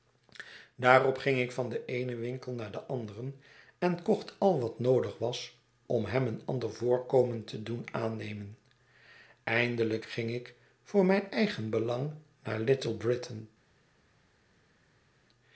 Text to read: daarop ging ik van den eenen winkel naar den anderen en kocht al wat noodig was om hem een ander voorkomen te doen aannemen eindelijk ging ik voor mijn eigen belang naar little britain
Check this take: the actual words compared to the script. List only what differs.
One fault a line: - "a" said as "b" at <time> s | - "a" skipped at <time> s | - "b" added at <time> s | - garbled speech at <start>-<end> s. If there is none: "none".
none